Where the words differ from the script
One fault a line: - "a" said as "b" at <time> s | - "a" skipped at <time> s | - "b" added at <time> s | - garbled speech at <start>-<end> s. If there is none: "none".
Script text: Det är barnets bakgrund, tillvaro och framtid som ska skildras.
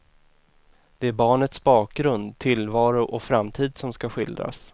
none